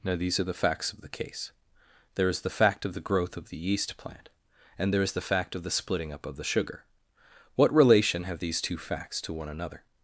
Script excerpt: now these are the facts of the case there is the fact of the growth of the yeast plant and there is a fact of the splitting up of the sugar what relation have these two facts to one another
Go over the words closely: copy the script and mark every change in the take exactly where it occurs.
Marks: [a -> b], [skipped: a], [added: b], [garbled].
now these are the facts of the case there is the fact of the growth of the yeast plant and there is [a -> the] fact of the splitting up of the sugar what relation have these two facts to one another